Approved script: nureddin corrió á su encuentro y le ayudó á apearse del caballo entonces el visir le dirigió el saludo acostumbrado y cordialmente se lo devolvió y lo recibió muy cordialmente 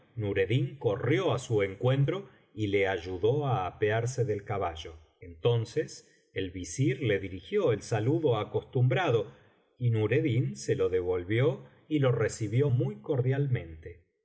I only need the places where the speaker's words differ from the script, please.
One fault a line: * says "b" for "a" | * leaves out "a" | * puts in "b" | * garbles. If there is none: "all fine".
* says "nureddin" for "cordialmente"